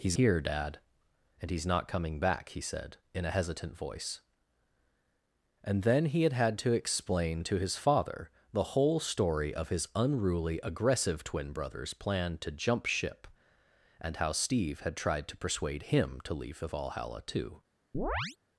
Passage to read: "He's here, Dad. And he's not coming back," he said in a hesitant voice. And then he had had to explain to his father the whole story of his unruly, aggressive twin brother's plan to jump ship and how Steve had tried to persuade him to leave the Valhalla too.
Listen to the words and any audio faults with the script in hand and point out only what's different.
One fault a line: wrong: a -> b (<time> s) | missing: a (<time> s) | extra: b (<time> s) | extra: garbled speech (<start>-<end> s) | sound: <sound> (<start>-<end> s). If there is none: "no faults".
sound: chirp (17.9-18.4 s)